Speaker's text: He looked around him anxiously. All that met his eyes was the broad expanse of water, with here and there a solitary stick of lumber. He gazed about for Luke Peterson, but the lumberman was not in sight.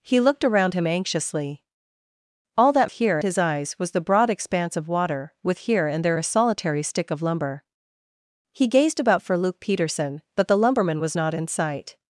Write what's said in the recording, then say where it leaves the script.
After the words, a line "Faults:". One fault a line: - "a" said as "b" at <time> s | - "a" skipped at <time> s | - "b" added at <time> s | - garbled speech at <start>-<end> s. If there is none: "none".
He looked around him anxiously. All that here his eyes was the broad expanse of water, with here and there a solitary stick of lumber. He gazed about for Luke Peterson, but the lumberman was not in sight.
Faults:
- "met" said as "here" at 2.9 s